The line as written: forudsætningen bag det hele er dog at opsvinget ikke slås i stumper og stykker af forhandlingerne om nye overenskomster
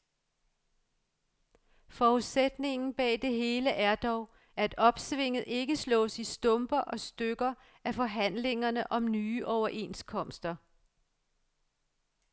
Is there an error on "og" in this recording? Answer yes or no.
no